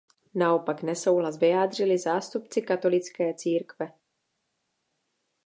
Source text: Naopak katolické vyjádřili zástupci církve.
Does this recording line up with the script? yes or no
no